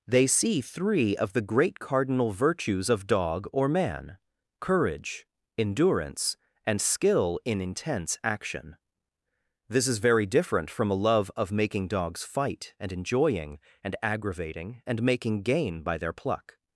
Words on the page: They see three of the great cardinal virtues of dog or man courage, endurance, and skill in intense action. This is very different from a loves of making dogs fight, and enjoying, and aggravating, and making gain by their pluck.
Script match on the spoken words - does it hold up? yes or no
no